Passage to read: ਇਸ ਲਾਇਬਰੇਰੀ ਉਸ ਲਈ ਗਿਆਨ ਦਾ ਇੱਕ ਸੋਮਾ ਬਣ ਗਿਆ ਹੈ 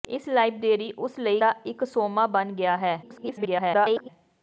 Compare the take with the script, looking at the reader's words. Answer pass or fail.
fail